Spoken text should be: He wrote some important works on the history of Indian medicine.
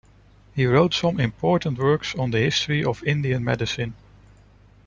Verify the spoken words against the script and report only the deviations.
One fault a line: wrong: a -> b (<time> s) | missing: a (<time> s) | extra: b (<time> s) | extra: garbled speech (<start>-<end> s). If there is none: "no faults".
no faults